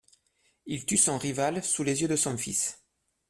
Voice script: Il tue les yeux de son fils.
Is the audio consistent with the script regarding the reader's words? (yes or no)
no